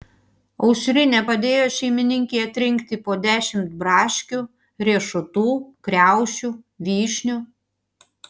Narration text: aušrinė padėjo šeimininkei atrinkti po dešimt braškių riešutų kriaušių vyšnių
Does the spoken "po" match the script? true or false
true